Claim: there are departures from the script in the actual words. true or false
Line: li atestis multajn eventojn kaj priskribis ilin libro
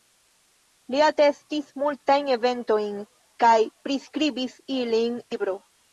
false